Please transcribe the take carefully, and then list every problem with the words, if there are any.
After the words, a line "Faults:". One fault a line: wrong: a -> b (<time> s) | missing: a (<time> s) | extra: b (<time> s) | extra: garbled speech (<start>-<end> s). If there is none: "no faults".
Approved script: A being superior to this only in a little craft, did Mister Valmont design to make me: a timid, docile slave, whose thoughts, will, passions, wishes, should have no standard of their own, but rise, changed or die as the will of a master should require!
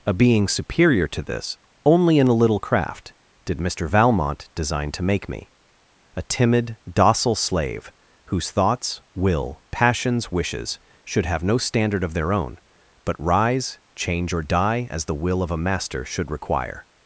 A being superior to this only in a little craft, did Mister Valmont design to make me: a timid, docile slave, whose thoughts, will, passions, wishes, should have no standard of their own, but rise, change or die as the will of a master should require!
Faults:
wrong: changed -> change (13.9 s)